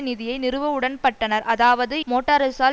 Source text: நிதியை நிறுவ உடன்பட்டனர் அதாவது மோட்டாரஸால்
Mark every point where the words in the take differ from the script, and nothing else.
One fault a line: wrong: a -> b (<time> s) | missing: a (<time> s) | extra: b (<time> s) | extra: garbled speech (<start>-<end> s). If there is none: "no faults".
no faults